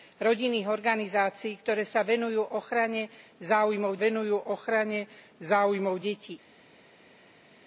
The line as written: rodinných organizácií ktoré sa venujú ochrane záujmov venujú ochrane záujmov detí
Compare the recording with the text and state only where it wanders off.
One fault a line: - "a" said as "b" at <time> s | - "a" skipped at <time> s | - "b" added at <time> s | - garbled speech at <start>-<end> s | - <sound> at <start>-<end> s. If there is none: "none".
none